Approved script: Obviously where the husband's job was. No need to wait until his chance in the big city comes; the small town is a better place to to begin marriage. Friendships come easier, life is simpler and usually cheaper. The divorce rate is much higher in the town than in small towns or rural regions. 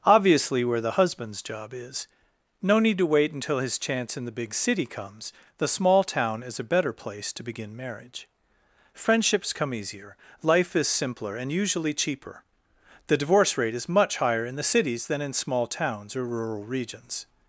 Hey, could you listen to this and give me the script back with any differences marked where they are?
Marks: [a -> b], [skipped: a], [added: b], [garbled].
Obviously where the husband's job [was. -> is] No need to wait until his chance in the big city comes; the small town is a better place to [skipped: to] begin marriage. Friendships come easier, life is simpler and usually cheaper. The divorce rate is much higher in the [town -> cities] than in small towns or rural regions.